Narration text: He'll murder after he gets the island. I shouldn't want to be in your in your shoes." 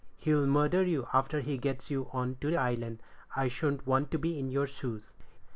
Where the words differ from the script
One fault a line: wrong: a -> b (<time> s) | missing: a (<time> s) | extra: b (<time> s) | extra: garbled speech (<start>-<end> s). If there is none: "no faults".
extra: you (0.8 s)
extra: you on to (1.9 s)
missing: in your (4.7 s)